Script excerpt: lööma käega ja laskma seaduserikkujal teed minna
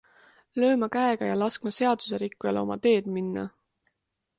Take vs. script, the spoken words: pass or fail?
fail